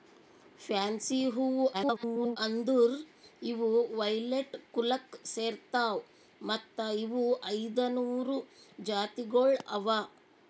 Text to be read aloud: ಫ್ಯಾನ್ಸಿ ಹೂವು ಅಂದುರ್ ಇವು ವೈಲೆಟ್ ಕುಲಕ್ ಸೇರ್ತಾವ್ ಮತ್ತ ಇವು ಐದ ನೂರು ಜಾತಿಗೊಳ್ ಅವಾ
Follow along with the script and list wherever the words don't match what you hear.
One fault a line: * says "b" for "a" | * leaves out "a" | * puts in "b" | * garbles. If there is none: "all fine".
* garbles